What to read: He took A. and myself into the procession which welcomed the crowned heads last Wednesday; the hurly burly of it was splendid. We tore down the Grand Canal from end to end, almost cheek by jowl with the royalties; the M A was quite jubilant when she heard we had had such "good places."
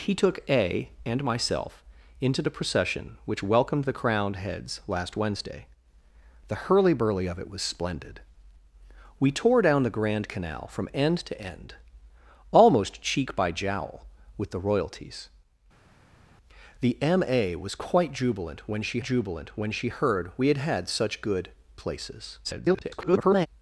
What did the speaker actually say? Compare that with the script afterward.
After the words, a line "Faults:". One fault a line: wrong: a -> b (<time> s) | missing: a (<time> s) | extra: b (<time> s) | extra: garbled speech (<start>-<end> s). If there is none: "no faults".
He took A. and myself into the procession which welcomed the crowned heads last Wednesday; the hurly burly of it was splendid. We tore down the Grand Canal from end to end, almost cheek by jowl with the royalties; the M A was quite jubilant when she jubilant when she heard we had had such "good places." [garbled]
Faults:
extra: jubilant when she (19.0 s)
extra: garbled speech (22.4-23.5 s)